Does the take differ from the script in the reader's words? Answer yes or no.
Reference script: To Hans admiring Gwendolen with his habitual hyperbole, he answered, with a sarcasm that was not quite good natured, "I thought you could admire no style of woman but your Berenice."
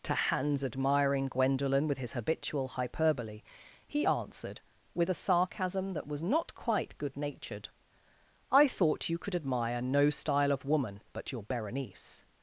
no